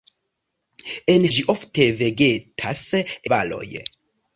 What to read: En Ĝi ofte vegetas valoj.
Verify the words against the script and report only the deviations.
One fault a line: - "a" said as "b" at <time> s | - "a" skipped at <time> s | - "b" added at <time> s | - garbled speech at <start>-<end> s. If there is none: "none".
none